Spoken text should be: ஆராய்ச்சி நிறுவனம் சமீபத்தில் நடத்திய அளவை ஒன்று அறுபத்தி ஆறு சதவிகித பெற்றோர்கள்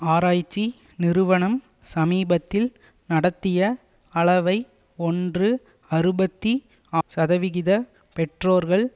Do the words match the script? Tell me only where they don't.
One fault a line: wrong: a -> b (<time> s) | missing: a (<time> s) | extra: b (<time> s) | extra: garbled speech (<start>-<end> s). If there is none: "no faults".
missing: ஆறு (6.5 s)